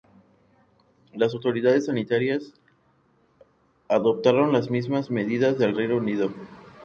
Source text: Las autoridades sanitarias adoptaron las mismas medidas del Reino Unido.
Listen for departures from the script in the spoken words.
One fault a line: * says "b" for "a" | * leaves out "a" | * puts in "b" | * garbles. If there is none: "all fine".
all fine